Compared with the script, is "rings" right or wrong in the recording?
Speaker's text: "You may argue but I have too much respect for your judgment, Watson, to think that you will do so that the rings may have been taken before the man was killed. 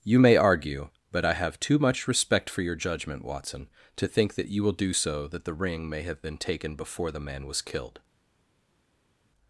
wrong